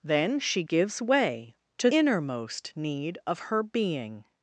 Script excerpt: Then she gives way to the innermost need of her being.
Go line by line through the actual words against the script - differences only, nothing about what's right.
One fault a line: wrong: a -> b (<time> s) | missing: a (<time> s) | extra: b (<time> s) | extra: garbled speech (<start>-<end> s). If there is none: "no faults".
missing: the (1.9 s)